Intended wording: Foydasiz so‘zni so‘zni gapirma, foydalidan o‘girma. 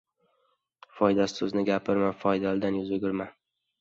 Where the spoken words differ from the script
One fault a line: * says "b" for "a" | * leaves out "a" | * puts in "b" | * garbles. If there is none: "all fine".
* leaves out "so‘zni"
* puts in "yuz"